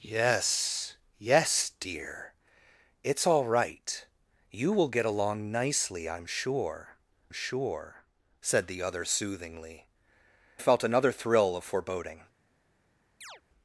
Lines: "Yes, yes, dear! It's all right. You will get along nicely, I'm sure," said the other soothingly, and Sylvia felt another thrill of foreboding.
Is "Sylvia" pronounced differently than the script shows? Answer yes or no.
yes